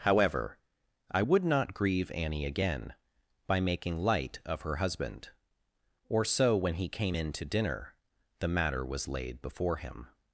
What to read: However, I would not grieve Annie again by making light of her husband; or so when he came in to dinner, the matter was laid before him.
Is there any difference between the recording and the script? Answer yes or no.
no